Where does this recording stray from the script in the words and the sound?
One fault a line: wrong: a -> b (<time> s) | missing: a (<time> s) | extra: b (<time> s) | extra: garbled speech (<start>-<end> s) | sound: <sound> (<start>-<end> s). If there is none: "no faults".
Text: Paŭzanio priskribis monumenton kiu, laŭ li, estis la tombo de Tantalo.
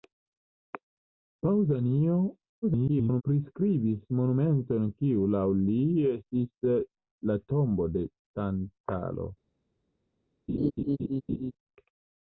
extra: garbled speech (2.6-3.2 s)
sound: laugh (10.5-11.5 s)